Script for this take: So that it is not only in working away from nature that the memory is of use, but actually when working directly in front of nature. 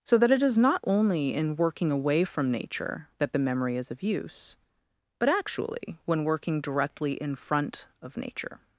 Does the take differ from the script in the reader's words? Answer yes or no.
no